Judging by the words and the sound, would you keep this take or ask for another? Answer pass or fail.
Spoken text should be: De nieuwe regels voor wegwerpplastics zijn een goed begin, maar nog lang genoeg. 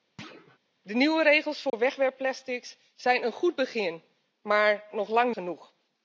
fail